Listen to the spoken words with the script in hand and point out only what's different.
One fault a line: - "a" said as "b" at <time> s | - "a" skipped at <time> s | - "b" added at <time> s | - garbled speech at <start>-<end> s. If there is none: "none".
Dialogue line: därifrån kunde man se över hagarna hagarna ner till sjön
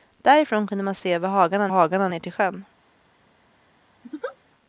none